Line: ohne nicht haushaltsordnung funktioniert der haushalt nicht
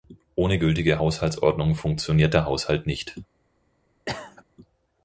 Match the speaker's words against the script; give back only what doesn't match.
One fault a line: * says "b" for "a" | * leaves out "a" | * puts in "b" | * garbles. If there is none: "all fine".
* says "gültige" for "nicht"